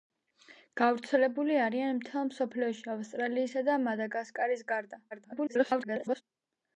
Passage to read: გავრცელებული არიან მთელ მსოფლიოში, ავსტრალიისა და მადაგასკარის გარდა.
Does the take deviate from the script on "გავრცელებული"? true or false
false